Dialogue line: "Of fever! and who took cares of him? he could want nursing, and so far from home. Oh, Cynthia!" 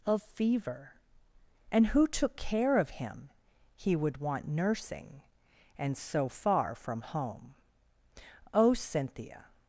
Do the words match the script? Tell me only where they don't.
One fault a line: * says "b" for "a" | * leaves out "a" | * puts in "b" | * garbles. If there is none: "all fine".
* says "care" for "cares"
* says "would" for "could"